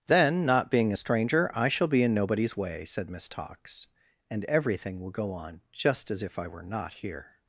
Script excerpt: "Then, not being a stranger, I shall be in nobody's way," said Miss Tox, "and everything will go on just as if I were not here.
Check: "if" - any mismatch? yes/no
no